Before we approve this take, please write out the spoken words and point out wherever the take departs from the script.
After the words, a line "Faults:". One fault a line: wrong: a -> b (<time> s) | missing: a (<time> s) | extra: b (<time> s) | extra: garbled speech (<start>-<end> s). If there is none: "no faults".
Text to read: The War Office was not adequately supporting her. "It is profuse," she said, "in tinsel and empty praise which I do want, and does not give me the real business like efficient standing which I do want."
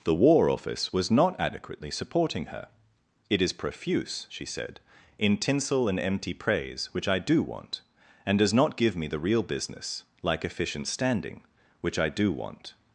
The War Office was not adequately supporting her. "It is profuse," she said, "in tinsel and empty praise which I do want, and does not give me the real business like efficient standing which I do want."
Faults:
no faults